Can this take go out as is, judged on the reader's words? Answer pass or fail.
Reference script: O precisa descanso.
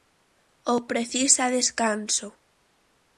pass